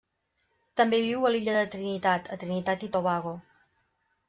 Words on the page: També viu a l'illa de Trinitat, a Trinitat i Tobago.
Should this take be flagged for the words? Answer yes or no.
no